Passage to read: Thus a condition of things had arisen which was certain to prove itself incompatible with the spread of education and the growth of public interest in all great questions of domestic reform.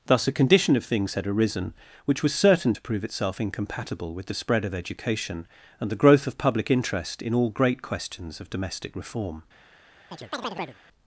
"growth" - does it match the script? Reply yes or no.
yes